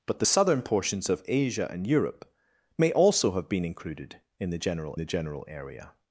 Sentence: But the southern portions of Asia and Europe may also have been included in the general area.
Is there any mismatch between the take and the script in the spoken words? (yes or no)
yes